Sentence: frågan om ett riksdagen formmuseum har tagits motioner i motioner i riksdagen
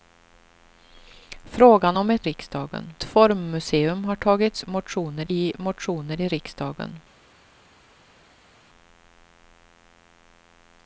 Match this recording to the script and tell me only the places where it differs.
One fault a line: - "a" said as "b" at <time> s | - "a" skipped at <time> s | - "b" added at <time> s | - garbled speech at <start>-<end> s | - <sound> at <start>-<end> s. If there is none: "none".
none